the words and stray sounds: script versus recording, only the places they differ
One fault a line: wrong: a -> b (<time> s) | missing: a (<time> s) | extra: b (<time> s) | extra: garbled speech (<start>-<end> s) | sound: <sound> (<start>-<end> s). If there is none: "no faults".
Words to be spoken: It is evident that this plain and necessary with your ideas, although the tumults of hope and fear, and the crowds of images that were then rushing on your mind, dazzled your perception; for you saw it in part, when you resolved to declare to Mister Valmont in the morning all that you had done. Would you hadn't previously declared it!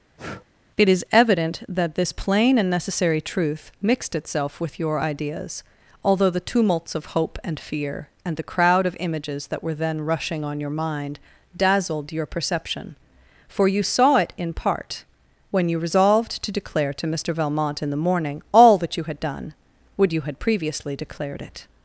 sound: breath (0.2-0.5 s)
extra: truth mixed itself (3.2 s)
wrong: crowds -> crowd (8.5 s)
wrong: hadn't -> had (20.2 s)